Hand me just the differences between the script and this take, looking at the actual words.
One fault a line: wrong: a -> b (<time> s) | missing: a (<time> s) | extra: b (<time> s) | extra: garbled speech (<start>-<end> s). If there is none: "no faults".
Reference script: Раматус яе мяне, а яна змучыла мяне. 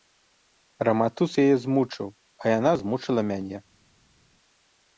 wrong: мяне -> змучыў (1.7 s)